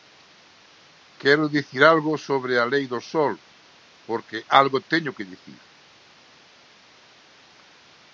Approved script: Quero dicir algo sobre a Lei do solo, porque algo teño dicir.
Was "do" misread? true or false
false